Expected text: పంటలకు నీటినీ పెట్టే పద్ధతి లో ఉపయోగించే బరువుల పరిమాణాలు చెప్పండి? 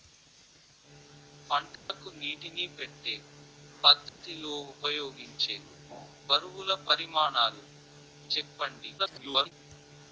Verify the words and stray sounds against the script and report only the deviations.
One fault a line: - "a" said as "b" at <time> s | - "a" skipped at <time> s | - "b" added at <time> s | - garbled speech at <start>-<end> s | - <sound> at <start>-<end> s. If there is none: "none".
- dropout at 1.8-1.9 s
- dropout at 4.1-4.2 s
- garbled speech at 9.0-9.5 s